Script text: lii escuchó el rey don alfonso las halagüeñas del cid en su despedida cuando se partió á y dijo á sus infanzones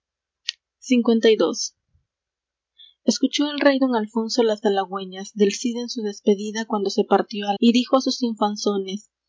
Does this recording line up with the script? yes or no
yes